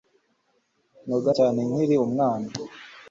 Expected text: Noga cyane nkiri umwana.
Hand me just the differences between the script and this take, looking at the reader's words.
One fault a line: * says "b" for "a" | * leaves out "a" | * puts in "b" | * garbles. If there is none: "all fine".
all fine